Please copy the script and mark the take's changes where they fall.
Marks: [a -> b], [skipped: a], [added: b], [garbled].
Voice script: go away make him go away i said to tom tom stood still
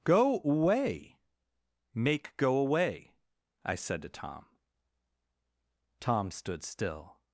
go away make [skipped: him] go away i said to tom tom stood still